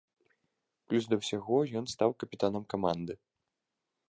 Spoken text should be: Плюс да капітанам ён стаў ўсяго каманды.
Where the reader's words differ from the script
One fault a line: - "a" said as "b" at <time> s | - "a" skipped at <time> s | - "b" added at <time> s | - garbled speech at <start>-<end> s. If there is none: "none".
- "капітанам" said as "ўсяго" at 1.2 s
- "ўсяго" said as "капітанам" at 2.2 s